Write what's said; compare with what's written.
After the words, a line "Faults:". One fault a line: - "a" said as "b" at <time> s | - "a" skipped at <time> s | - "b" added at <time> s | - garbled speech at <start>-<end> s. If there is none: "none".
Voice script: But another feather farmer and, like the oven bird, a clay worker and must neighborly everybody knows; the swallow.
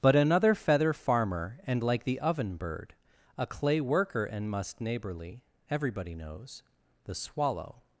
But another feather farmer and, like the oven bird, a clay worker and must neighborly everybody knows; the swallow.
Faults:
none